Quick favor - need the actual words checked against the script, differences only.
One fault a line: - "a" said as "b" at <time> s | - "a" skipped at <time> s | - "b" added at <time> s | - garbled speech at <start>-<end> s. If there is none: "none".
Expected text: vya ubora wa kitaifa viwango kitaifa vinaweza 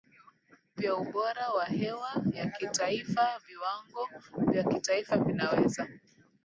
- "hewa ya" added at 1.6 s
- "vya" added at 4.5 s